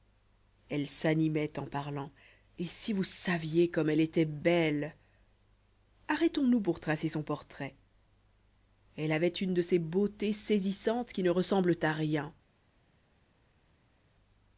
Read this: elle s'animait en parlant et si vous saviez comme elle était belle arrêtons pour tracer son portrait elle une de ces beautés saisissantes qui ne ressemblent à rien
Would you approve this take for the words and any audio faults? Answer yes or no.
no